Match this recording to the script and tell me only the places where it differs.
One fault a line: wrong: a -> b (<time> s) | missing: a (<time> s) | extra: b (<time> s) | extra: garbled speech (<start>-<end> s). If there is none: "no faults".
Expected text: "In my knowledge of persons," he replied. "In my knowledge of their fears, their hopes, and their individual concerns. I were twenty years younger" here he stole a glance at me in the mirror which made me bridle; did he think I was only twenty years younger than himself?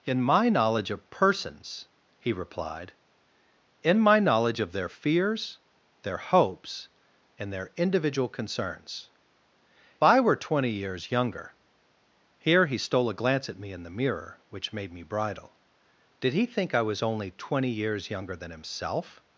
no faults